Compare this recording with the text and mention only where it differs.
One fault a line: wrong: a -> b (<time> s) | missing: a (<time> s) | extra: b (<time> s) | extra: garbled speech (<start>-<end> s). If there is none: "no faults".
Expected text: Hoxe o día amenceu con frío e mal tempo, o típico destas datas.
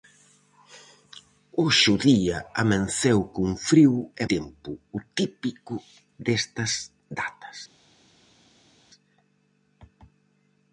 missing: mal (4.2 s)